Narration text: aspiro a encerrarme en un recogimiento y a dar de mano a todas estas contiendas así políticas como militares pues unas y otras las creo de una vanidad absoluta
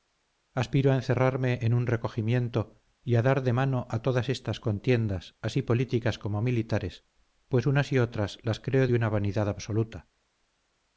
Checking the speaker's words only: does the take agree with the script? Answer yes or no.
yes